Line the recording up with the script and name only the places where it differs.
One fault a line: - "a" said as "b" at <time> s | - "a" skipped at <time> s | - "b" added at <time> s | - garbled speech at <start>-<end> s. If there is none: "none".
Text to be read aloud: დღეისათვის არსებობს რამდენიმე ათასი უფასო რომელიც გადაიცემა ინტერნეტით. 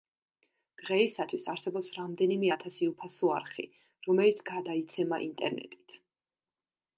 - "არხი" added at 3.4 s